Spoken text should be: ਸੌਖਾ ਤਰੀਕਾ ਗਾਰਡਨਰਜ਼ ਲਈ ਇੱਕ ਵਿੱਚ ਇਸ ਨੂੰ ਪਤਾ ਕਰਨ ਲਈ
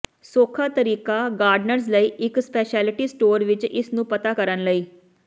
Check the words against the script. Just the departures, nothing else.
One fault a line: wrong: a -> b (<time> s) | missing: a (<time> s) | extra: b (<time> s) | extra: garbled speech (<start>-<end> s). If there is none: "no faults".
extra: ਸਪੈਸ਼ਲਿਟੀ ਸਟੋਰ (2.4 s)